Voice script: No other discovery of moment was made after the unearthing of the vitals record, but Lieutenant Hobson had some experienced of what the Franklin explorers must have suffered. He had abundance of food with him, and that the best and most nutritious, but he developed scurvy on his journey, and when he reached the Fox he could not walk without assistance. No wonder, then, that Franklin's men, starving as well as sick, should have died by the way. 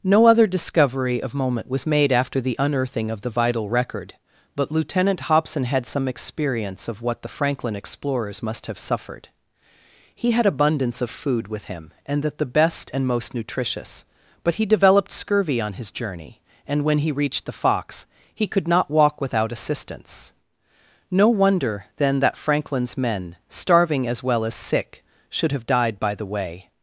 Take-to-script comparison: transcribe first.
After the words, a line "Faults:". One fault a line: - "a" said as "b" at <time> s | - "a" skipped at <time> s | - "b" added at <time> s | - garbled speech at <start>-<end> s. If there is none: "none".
No other discovery of moment was made after the unearthing of the vital record, but Lieutenant Hobson had some experience of what the Franklin explorers must have suffered. He had abundance of food with him, and that the best and most nutritious, but he developed scurvy on his journey, and when he reached the Fox he could not walk without assistance. No wonder, then, that Franklin's men, starving as well as sick, should have died by the way.
Faults:
- "vitals" said as "vital" at 3.3 s
- "experienced" said as "experience" at 6.1 s